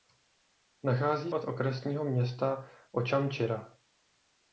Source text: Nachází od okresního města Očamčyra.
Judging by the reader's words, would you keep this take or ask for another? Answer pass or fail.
pass